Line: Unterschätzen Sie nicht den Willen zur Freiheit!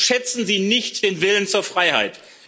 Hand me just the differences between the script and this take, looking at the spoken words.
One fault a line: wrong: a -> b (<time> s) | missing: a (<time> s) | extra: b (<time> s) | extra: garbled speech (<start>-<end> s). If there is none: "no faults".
no faults